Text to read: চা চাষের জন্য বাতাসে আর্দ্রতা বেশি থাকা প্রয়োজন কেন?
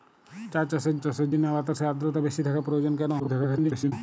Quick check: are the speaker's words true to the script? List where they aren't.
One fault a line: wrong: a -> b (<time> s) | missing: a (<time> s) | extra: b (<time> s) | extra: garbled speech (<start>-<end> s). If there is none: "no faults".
extra: চাষের (1.0 s)
extra: garbled speech (3.2-3.9 s)